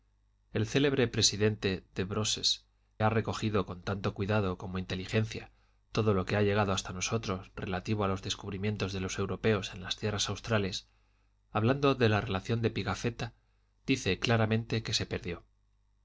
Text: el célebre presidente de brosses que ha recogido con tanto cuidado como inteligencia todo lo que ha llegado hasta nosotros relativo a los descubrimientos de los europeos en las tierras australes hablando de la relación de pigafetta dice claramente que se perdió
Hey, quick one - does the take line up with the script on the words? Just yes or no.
no